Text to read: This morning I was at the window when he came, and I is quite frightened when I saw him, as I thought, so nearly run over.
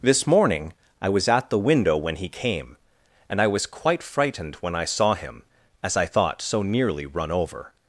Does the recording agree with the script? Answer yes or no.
no